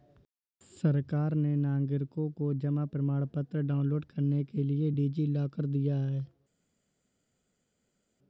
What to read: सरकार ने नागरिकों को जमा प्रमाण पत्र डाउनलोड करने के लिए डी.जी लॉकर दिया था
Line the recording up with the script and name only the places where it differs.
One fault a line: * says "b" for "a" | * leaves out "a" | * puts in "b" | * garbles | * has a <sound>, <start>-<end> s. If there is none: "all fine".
* says "है" for "था"